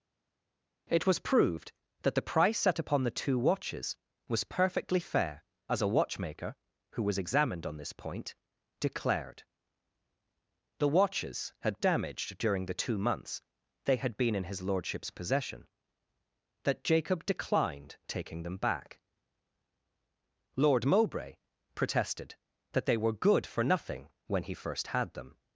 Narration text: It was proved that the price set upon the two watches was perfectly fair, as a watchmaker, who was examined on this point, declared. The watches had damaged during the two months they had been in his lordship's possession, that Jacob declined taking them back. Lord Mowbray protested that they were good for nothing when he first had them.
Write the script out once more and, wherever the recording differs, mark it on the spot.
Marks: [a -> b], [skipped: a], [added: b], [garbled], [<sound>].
It was proved that the price set upon the two watches was perfectly fair, as a watchmaker, who was examined on this point, declared. The watches had damaged during the two months they had been in his lordship's possession, that Jacob declined taking them back. Lord Mowbray protested that they were good for nothing when he first had them.